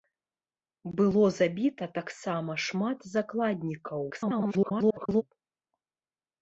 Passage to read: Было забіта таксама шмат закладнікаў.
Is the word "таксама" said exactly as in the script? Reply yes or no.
yes